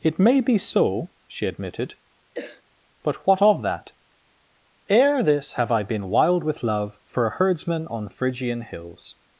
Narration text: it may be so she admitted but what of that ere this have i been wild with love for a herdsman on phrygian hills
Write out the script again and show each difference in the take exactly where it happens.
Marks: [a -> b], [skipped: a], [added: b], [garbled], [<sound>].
it may be so she admitted [cough] but what of that ere this have i been wild with love for a herdsman on phrygian hills